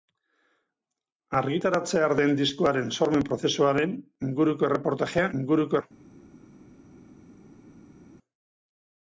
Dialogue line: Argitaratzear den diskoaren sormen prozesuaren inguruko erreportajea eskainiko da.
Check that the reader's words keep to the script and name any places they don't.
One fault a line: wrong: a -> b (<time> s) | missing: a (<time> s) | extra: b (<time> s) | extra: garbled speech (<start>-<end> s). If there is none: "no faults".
wrong: eskainiko -> inguruko (5.4 s)